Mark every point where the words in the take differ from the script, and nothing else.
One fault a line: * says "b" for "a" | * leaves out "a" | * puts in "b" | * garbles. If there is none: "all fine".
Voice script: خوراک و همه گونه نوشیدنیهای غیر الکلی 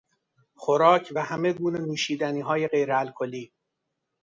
all fine